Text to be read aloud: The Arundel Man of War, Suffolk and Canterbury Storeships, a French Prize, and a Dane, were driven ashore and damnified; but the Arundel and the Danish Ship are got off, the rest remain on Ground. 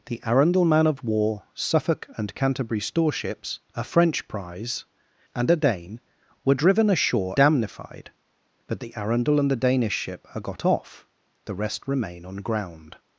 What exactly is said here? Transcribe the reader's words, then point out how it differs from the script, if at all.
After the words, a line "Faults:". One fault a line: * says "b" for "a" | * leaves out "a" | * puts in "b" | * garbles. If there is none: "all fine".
The Arundel Man of War, Suffolk and Canterbury Storeships, a French Prize, and a Dane, were driven ashore damnified; but the Arundel and the Danish Ship are got off, the rest remain on Ground.
Faults:
* leaves out "and"